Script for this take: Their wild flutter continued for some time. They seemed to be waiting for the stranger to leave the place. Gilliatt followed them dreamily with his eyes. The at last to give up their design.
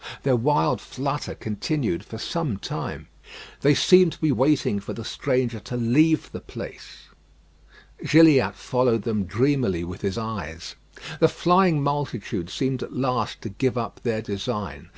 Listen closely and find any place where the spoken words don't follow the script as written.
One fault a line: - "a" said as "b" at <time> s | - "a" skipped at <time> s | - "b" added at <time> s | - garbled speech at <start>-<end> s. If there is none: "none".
- "flying multitude seemed" added at 11.3 s